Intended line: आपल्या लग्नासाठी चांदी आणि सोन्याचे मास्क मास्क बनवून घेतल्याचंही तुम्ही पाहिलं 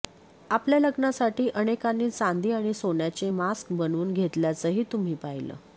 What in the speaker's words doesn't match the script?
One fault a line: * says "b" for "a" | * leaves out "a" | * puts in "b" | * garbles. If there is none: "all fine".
* puts in "अनेकांनी"
* leaves out "मास्क"